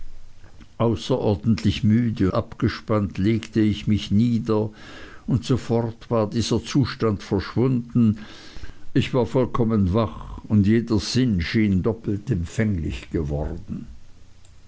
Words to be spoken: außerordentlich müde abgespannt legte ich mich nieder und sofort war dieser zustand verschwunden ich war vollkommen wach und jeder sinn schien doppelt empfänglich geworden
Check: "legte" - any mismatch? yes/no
no